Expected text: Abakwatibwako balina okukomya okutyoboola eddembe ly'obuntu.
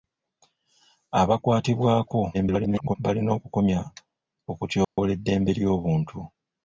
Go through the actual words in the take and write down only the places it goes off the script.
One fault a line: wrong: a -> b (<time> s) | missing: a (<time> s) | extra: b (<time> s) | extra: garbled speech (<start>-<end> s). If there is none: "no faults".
extra: garbled speech (2.3-3.0 s)